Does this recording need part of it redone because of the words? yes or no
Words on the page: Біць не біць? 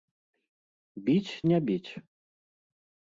no